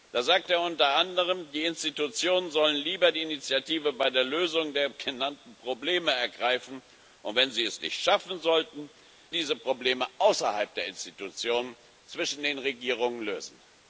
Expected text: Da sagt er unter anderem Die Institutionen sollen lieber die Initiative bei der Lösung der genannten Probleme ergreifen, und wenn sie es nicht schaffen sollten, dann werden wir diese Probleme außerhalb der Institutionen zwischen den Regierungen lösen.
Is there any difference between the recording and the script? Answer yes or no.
yes